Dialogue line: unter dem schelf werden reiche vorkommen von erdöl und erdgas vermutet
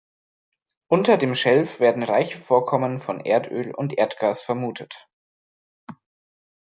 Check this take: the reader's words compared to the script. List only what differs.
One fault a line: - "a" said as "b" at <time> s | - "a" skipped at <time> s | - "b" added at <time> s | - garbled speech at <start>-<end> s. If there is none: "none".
none